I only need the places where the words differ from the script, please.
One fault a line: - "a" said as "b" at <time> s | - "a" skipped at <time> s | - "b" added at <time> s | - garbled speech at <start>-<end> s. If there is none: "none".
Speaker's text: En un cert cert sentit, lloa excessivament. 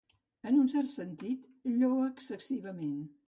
- "cert" skipped at 0.9 s